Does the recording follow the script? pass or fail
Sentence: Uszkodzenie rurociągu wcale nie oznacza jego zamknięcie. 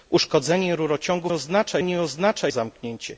fail